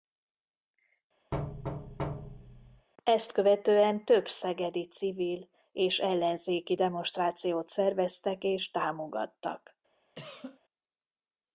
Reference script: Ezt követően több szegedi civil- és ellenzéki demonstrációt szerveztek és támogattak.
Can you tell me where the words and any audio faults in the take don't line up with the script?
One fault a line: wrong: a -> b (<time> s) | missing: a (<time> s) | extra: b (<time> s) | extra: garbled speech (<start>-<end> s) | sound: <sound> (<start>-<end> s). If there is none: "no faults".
sound: thud (1.3-2.9 s)
sound: cough (10.2-10.6 s)